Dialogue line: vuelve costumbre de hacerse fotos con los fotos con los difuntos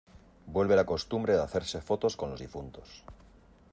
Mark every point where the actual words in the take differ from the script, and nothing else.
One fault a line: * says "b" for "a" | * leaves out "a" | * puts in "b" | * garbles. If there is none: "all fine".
* puts in "la"
* leaves out "fotos con los"